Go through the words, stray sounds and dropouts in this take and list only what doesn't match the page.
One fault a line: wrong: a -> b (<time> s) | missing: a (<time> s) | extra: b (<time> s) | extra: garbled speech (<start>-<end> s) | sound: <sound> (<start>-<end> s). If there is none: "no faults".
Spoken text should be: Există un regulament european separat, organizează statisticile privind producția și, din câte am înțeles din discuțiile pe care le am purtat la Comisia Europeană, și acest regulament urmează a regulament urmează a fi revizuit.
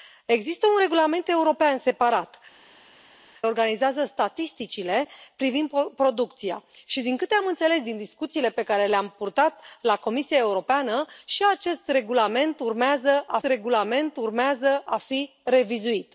no faults